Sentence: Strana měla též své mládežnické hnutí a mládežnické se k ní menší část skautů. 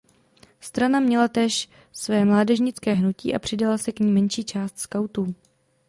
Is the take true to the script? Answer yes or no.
no